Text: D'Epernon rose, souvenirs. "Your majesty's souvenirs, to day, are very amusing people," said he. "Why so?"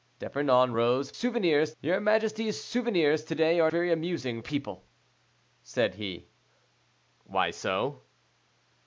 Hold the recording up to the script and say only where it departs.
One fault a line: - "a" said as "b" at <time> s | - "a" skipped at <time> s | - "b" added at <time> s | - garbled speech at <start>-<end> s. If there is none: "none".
none